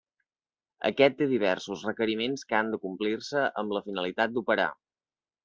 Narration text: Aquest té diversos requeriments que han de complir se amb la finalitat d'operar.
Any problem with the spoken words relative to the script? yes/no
no